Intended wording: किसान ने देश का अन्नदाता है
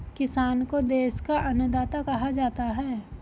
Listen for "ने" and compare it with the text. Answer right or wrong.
wrong